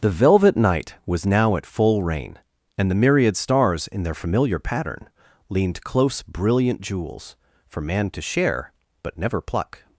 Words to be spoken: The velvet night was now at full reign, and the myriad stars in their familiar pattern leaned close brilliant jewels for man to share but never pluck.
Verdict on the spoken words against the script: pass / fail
pass